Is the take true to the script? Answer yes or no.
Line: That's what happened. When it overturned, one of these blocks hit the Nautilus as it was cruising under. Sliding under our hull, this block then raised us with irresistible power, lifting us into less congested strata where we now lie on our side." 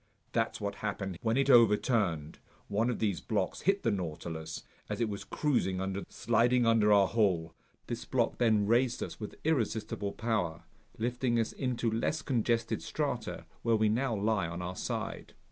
yes